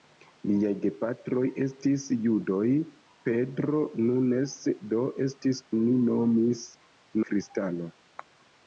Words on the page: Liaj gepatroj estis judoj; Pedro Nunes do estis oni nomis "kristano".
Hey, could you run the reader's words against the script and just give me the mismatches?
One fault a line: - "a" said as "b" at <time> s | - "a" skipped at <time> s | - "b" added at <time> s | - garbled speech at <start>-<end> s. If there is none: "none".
none